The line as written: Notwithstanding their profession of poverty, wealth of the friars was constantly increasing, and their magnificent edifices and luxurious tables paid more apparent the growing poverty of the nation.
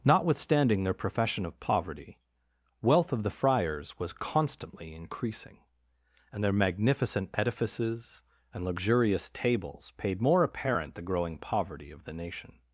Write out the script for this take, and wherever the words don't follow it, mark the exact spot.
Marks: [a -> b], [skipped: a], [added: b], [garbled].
Notwithstanding their profession of poverty, wealth of the friars was constantly increasing, and their magnificent edifices and luxurious tables paid more apparent the growing poverty of the nation.